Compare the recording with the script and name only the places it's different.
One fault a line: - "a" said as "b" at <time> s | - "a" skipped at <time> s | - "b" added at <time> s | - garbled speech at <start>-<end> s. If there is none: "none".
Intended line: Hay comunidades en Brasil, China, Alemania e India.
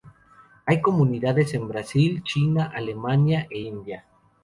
none